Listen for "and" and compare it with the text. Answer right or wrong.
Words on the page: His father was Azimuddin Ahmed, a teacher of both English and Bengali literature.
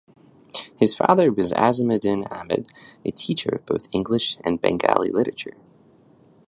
right